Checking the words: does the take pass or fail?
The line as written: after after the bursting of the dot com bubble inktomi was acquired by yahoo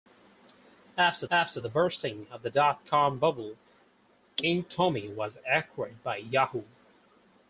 pass